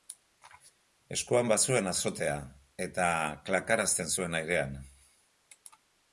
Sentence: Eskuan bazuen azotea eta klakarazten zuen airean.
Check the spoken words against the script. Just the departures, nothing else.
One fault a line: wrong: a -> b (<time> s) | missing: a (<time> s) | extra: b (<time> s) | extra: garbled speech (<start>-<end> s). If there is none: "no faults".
no faults